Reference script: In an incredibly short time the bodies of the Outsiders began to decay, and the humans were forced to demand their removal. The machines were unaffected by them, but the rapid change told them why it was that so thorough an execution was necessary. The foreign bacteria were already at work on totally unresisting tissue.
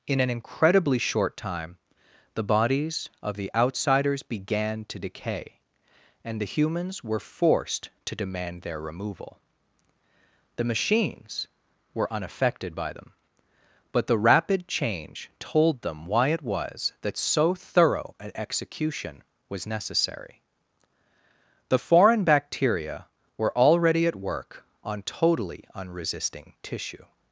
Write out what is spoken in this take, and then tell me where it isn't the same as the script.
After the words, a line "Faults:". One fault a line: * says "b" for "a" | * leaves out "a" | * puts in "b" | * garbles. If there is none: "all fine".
In an incredibly short time the bodies of the Outsiders began to decay, and the humans were forced to demand their removal. The machines were unaffected by them, but the rapid change told them why it was that so thorough an execution was necessary. The foreign bacteria were already at work on totally unresisting tissue.
Faults:
all fine